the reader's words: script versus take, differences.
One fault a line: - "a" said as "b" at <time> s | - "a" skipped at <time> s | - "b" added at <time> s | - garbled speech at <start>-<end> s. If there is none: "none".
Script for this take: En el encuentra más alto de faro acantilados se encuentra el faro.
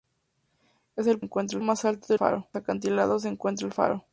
none